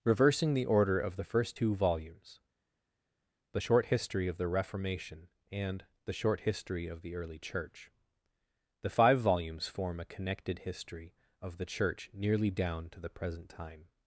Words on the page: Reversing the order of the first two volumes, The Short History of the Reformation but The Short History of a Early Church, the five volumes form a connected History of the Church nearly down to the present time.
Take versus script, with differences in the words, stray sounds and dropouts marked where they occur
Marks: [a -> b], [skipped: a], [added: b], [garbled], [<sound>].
Reversing the order of the first two volumes, The Short History of the Reformation [but -> and] The Short History of [a -> the] Early Church, the five volumes form a connected History of the Church nearly down to the present time.